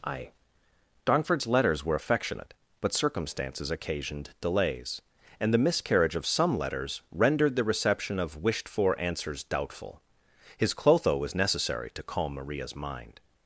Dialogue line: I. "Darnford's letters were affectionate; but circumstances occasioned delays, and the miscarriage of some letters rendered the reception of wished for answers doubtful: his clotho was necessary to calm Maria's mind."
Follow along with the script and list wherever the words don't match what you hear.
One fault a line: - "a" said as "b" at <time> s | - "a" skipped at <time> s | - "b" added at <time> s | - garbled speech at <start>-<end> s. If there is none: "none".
none